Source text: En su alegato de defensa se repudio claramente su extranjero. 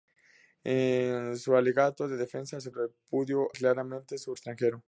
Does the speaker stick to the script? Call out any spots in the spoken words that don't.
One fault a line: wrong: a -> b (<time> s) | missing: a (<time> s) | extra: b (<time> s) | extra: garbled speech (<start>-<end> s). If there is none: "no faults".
no faults